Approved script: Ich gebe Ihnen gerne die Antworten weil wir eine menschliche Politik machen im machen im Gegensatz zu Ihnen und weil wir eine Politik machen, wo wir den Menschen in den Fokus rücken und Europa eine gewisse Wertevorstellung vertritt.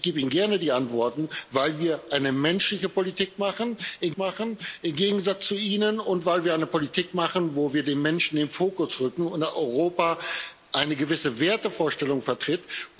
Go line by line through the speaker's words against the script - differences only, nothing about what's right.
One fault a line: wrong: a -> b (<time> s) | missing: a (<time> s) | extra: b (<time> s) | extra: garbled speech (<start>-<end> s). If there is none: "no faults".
no faults